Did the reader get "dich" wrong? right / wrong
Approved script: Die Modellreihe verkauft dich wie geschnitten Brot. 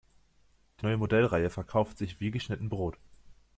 wrong